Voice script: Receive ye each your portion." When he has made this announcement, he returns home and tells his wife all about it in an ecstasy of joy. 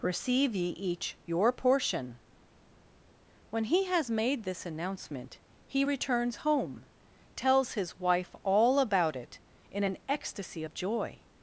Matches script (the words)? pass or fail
fail